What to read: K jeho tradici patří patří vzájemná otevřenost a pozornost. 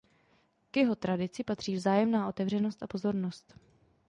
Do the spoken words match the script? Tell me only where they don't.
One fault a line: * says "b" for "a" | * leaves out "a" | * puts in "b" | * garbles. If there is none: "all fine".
* leaves out "patří"